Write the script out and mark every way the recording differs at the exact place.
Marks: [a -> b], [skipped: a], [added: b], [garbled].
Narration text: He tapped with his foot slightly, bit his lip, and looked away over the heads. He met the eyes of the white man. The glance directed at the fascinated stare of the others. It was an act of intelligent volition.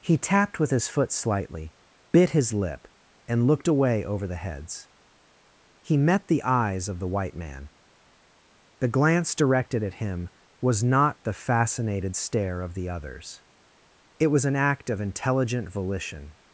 He tapped with his foot slightly, bit his lip, and looked away over the heads. He met the eyes of the white man. The glance directed at [added: him was not] the fascinated stare of the others. It was an act of intelligent volition.